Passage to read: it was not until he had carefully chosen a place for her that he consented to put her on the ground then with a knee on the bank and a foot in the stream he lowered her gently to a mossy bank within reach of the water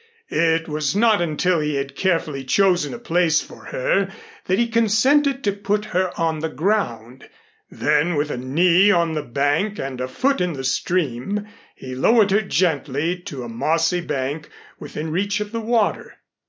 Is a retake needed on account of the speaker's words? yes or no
no